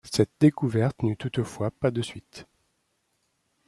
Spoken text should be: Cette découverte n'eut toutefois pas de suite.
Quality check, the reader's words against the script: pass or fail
pass